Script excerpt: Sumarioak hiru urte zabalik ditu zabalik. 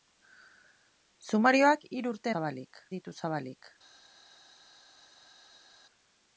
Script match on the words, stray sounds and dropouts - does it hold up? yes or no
yes